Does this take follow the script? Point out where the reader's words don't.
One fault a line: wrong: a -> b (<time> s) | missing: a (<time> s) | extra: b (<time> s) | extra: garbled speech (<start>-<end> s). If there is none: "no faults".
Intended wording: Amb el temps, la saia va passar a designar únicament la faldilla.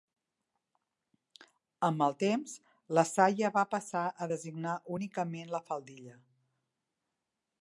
no faults